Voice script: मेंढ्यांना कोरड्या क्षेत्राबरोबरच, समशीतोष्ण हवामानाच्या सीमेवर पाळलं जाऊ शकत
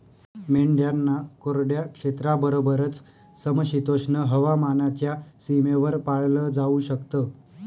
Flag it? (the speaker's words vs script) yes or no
no